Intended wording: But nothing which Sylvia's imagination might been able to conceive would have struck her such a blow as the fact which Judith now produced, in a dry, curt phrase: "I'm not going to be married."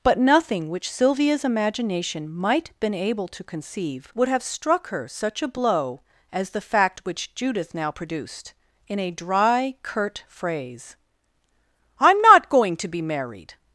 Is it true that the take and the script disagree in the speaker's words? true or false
false